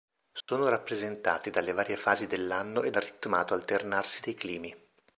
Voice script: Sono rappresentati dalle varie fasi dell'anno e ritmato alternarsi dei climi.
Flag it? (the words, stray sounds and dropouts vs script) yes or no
yes